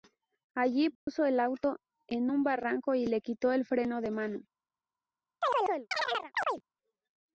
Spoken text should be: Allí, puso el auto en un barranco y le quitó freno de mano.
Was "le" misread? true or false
false